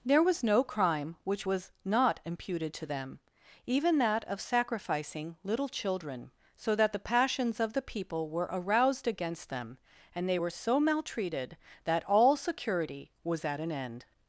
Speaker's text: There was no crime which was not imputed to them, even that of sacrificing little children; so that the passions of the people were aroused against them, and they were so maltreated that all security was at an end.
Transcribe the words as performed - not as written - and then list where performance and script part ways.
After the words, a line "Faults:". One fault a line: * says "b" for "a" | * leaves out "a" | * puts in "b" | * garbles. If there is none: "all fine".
There was no crime which was not imputed to them, even that of sacrificing little children; so that the passions of the people were aroused against them, and they were so maltreated that all security was at an end.
Faults:
all fine